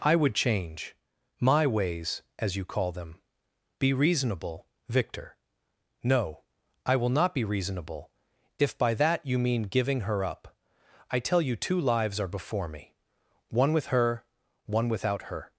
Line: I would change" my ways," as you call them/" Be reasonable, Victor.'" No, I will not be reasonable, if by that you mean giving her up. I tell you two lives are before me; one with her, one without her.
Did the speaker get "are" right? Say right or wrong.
right